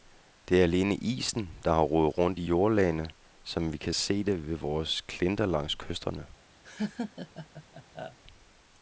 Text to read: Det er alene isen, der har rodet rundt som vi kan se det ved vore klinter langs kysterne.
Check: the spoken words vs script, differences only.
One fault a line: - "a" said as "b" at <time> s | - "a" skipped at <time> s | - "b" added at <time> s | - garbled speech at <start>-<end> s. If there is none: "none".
- "i jordlagene" added at 2.4 s